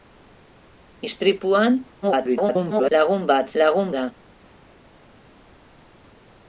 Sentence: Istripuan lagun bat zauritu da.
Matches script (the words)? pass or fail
fail